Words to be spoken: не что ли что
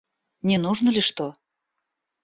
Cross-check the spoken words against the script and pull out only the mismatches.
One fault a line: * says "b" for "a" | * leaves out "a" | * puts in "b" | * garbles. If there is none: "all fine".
* says "нужно" for "что"